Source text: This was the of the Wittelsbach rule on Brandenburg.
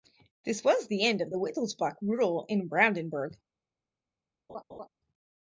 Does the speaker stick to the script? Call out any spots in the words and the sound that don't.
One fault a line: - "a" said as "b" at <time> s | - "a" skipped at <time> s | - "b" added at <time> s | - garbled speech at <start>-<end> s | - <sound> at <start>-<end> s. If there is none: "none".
- "end" added at 1.0 s
- "on" said as "in" at 2.5 s
- laugh at 4.5-4.9 s